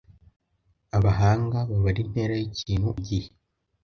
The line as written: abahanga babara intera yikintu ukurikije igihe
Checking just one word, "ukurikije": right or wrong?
wrong